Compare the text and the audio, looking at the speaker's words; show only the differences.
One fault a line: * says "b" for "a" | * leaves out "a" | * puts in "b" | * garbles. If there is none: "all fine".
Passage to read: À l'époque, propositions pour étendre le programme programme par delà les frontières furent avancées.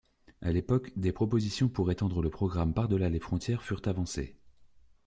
* puts in "des"
* leaves out "programme"